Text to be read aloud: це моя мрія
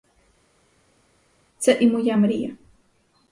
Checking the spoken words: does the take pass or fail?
fail